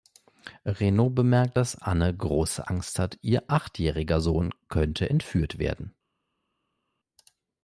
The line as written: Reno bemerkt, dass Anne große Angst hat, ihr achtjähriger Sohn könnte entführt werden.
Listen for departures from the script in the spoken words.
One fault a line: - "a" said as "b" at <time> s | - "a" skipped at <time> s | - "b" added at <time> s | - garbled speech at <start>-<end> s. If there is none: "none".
none